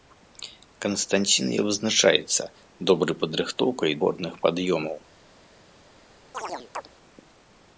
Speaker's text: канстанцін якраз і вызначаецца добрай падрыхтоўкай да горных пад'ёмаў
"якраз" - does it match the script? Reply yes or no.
no